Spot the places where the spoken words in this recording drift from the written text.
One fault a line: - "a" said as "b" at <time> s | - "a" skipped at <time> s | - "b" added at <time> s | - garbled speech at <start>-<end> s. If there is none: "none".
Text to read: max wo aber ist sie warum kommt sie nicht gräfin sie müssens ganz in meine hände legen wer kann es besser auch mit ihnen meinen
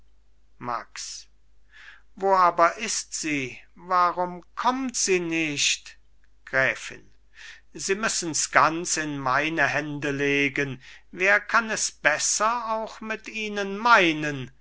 none